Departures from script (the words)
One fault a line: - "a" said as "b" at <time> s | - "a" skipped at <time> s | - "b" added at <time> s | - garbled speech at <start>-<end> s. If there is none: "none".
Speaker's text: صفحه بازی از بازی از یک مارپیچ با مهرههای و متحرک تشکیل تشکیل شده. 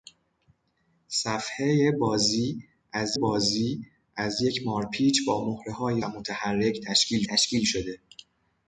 none